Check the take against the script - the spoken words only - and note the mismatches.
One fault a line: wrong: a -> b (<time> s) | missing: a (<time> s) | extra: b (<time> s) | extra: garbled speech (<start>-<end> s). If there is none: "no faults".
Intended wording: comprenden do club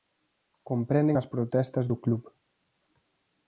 extra: as protestas (1.2 s)